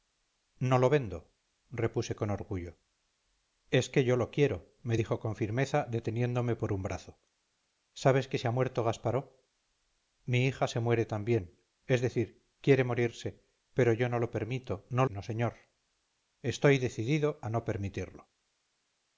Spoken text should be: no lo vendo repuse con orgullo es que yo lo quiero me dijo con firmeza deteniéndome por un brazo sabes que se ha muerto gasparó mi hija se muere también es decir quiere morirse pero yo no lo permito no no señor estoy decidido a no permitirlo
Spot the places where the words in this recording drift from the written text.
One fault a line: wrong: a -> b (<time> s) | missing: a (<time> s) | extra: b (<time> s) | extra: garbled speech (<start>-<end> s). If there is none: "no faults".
no faults